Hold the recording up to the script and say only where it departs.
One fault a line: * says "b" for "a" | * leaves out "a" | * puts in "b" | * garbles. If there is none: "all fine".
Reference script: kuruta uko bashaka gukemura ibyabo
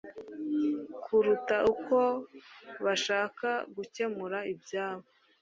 all fine